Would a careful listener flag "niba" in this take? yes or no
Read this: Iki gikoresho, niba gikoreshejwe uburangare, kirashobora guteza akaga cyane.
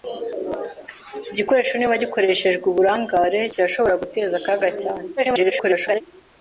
no